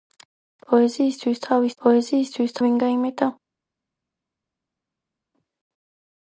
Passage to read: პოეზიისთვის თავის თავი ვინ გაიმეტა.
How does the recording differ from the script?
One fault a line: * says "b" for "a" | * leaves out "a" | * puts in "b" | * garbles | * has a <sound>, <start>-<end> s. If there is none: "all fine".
* says "პოეზიისთვის" for "თავი"